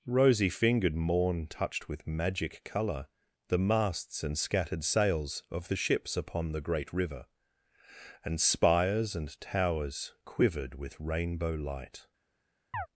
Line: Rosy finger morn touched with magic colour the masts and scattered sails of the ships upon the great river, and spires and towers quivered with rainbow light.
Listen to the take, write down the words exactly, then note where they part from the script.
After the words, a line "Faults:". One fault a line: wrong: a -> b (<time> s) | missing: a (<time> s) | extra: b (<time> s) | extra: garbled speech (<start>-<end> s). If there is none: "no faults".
Rosy fingered morn touched with magic colour the masts and scattered sails of the ships upon the great river, and spires and towers quivered with rainbow light.
Faults:
wrong: finger -> fingered (0.5 s)